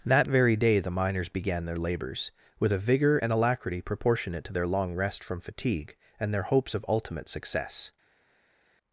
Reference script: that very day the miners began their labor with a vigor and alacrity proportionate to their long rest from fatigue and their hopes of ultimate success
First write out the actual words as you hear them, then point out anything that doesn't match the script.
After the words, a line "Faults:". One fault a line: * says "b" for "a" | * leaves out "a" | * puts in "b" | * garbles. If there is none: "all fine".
that very day the miners began their labors with a vigor and alacrity proportionate to their long rest from fatigue and their hopes of ultimate success
Faults:
* says "labors" for "labor"